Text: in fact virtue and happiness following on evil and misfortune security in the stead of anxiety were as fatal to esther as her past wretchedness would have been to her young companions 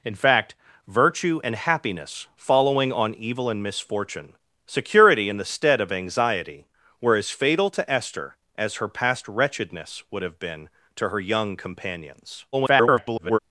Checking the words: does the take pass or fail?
fail